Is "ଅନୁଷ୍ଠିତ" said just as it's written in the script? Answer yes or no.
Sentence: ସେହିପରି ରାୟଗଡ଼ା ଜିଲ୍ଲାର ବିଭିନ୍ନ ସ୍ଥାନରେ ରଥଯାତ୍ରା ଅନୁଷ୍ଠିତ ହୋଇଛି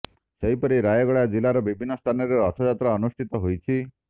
yes